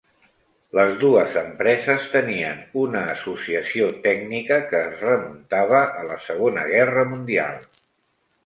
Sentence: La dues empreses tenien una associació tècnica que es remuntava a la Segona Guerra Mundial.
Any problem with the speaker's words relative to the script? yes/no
yes